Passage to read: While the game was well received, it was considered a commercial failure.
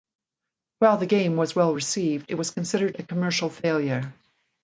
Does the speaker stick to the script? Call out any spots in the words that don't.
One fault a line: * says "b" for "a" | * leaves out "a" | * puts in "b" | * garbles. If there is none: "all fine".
all fine